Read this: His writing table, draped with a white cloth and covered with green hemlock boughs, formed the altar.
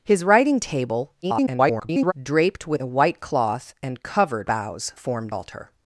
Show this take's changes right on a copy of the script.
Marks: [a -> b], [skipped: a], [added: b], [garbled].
His writing table, [garbled] draped with a white cloth and covered [skipped: with green hemlock] boughs, formed [skipped: the] altar.